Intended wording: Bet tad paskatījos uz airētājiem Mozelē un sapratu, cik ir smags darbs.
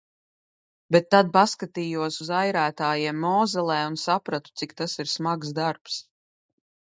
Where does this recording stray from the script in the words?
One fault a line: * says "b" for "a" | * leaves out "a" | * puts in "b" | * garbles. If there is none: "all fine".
* puts in "tas"